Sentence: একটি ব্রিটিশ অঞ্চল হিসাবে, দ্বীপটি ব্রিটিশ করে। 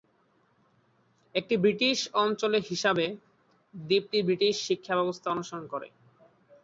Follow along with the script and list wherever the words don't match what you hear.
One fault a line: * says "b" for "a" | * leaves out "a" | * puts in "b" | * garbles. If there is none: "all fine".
* puts in "শিক্ষা ব্যবস্থা অনুসরণ"